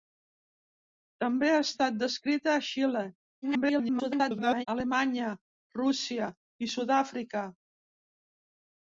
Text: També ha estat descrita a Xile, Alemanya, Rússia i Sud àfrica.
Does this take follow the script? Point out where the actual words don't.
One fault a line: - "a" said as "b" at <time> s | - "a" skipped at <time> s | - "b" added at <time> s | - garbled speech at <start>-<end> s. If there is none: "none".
- garbled speech at 3.4-4.7 s